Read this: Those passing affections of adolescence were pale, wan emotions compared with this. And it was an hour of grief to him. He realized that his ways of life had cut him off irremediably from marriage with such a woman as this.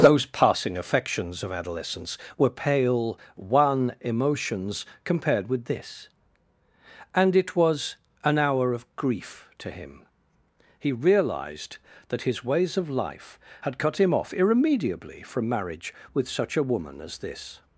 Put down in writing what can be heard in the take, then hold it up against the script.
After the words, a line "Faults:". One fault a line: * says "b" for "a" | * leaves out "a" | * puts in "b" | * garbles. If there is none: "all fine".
Those passing affections of adolescence were pale, wan emotions compared with this. And it was an hour of grief to him. He realized that his ways of life had cut him off irremediably from marriage with such a woman as this.
Faults:
all fine